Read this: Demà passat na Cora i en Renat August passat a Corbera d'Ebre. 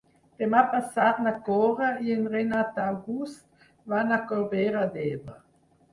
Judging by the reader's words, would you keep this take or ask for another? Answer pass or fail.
fail